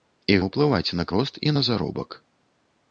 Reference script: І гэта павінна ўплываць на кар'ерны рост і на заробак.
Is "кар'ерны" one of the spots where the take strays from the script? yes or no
yes